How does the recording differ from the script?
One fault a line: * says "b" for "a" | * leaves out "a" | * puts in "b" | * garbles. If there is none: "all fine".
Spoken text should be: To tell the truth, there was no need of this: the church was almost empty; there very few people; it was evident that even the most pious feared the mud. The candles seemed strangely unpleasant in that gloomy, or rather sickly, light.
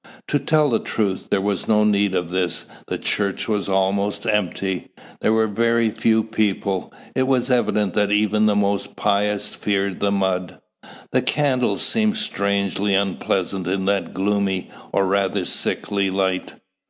* puts in "were"